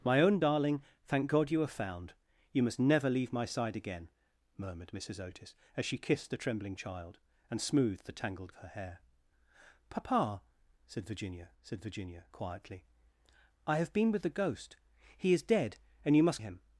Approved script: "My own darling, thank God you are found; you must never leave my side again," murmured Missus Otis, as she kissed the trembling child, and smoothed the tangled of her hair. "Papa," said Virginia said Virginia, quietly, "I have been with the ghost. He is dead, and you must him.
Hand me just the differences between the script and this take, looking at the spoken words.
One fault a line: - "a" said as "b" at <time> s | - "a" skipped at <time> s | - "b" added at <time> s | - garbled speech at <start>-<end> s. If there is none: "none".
none